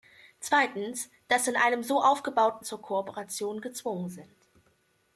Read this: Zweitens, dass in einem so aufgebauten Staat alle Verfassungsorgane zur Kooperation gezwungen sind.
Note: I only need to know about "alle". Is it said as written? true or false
false